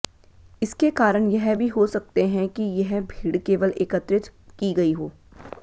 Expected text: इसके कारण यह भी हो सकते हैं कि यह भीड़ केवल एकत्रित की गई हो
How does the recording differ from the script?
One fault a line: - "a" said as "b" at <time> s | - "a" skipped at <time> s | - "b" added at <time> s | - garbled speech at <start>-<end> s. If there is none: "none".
none